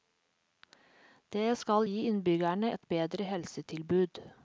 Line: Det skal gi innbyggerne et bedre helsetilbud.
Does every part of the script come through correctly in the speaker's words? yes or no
yes